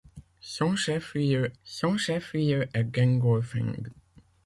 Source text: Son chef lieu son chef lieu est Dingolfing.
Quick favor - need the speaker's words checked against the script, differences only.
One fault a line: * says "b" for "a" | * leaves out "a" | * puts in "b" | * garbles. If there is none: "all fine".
all fine